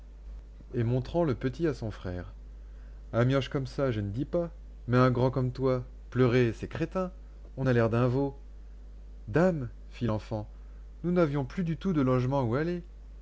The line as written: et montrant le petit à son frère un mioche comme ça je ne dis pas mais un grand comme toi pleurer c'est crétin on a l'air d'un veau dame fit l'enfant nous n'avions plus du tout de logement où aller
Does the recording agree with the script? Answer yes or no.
yes